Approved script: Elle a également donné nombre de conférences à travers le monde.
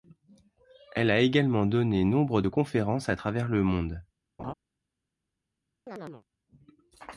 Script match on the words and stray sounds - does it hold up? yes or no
no